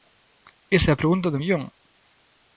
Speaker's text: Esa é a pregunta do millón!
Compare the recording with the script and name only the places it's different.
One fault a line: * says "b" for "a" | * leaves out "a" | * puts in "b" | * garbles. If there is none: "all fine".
all fine